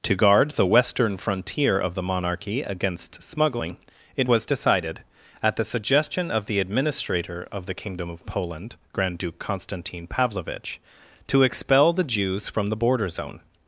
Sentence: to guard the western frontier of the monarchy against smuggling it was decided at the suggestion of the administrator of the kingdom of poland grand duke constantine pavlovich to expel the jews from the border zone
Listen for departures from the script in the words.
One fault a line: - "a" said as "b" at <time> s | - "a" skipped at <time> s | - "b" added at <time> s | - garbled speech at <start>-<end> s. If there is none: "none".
none